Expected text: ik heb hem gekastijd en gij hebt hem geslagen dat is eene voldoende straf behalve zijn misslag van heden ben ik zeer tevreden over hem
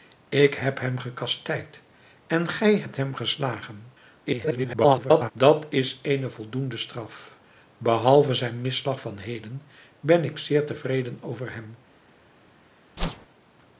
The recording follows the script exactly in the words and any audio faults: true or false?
false